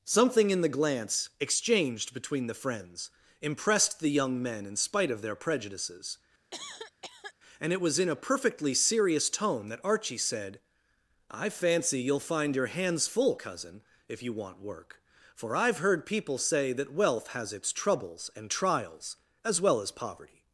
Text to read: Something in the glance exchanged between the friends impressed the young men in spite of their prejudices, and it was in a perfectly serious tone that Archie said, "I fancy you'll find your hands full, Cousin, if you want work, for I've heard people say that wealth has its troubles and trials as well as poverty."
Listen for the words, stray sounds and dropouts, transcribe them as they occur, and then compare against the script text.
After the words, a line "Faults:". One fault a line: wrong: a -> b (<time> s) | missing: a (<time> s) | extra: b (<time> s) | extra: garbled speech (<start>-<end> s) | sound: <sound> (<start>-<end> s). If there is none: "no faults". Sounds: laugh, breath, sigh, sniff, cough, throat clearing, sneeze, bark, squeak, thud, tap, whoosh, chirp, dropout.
Something in the glance exchanged between the friends impressed the young men in spite of their prejudices, and it was in a perfectly serious tone that Archie said, "I fancy you'll find your hands full, Cousin, if you want work, for I've heard people say that wealth has its troubles and trials as well as poverty."
Faults:
sound: cough (6.5-7.3 s)